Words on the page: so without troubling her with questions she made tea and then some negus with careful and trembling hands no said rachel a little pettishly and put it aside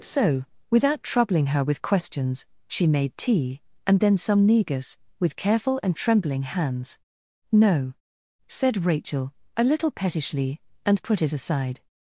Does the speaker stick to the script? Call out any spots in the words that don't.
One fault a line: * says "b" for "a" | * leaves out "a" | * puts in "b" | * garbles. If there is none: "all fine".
all fine